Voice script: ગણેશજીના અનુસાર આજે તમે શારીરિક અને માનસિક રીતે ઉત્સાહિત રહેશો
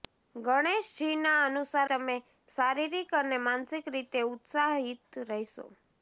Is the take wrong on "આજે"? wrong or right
wrong